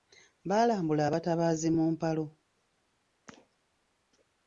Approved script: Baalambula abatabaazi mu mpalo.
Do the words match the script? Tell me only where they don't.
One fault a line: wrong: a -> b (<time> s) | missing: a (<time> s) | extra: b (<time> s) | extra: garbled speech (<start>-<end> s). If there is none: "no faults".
no faults